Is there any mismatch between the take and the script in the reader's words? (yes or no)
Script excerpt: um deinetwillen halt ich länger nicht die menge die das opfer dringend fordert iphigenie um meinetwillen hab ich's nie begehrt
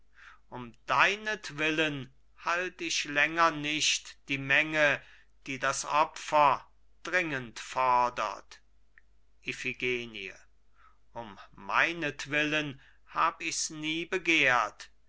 no